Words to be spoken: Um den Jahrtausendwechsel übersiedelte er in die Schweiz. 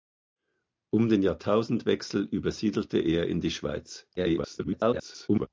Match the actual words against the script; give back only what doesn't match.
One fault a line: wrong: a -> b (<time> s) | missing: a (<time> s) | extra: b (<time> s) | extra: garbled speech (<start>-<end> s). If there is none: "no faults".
extra: garbled speech (4.2-5.5 s)